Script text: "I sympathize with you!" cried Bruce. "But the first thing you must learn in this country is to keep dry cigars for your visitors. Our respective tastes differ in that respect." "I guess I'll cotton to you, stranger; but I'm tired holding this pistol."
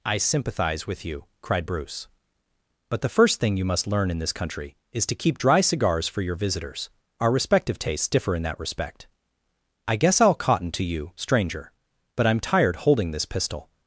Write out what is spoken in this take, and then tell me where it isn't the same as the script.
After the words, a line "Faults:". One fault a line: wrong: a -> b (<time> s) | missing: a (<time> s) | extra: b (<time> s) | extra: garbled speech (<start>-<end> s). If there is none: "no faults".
"I sympathize with you!" cried Bruce. "But the first thing you must learn in this country is to keep dry cigars for your visitors. Our respective tastes differ in that respect." "I guess I'll cotton to you, stranger; but I'm tired holding this pistol."
Faults:
no faults